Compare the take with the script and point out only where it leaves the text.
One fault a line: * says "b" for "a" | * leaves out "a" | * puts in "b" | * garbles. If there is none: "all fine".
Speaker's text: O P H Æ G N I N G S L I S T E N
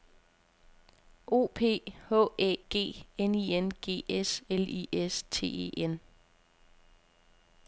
all fine